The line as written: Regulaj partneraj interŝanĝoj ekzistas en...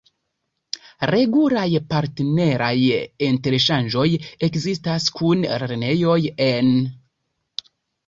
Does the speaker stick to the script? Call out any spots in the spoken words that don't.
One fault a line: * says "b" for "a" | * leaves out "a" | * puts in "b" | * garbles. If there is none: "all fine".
* puts in "kun lernejoj"